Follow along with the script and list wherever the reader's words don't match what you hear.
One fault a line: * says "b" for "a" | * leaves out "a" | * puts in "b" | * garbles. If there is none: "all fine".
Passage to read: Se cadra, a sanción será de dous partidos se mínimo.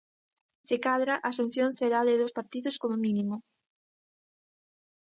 * says "como" for "se"